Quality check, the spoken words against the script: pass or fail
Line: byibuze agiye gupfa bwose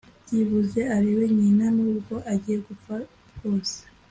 fail